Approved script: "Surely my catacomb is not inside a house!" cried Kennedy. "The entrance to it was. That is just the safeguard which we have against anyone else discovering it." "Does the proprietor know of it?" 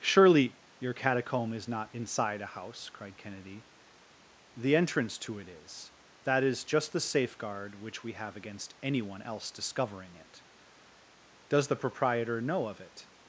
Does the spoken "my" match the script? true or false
false